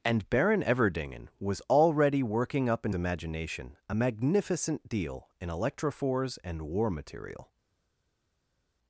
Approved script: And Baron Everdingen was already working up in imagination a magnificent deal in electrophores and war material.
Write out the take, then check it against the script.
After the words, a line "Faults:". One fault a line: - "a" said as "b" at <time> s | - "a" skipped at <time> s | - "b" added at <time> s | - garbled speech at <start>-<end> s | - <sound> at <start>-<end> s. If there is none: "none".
And Baron Everdingen was already working up in imagination a magnificent deal in electrophores and war material.
Faults:
none